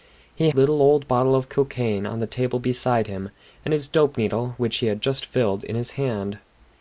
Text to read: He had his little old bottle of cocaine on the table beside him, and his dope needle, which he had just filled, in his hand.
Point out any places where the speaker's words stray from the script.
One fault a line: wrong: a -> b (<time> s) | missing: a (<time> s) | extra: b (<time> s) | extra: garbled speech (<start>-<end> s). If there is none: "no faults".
missing: had his (0.5 s)